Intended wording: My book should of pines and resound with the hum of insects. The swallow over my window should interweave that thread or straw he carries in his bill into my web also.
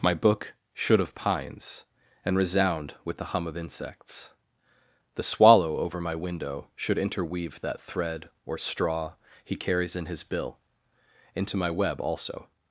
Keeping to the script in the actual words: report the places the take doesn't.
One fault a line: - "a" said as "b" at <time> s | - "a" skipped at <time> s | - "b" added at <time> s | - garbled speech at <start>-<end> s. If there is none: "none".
none